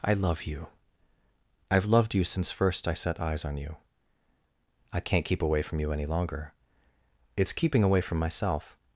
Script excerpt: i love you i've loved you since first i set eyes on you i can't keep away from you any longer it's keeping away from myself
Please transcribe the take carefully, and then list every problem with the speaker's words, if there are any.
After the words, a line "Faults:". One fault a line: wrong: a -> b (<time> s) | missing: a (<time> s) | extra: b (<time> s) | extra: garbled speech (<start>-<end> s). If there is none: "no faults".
i love you i've loved you since first i set eyes on you i can't keep away from you any longer it's keeping away from myself
Faults:
no faults